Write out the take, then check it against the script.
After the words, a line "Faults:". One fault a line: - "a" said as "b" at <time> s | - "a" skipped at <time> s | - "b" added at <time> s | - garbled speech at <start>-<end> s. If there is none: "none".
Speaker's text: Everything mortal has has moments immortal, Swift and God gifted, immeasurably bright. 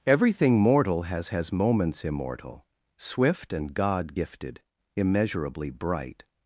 Everything mortal has has moments immortal, Swift and God gifted, immeasurably bright.
Faults:
none